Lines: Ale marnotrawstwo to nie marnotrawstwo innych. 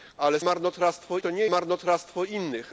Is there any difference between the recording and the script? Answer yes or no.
no